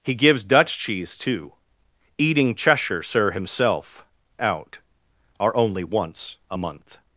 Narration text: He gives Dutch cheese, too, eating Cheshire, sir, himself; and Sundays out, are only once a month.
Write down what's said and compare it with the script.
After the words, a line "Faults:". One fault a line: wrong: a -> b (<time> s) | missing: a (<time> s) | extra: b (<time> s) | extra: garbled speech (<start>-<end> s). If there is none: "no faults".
He gives Dutch cheese, too, eating Cheshire, sir, himself; out, are only once a month.
Faults:
missing: and Sundays (4.0 s)